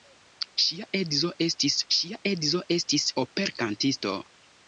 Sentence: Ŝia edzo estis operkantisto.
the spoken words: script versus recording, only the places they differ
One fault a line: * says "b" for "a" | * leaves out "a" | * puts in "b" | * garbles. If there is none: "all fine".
* puts in "ŝia edzo estis"